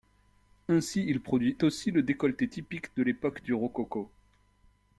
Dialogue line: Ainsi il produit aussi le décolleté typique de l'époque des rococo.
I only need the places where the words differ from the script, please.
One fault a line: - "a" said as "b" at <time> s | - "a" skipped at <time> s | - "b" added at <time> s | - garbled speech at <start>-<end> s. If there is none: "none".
- "des" said as "du" at 3.4 s